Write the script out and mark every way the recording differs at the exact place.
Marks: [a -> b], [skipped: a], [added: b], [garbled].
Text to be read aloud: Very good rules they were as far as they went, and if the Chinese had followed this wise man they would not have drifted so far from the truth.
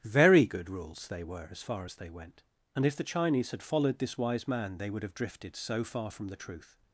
Very good rules they were as far as they went, and if the Chinese had followed this wise man they would [skipped: not] have drifted so far from the truth.